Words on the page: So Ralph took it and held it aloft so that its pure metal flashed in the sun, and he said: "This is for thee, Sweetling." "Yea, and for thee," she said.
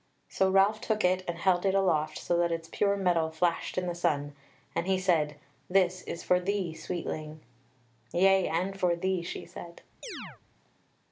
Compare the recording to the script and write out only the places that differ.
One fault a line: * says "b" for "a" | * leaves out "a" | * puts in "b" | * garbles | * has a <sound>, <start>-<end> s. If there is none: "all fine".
* has a chirp, 10.0-10.4 s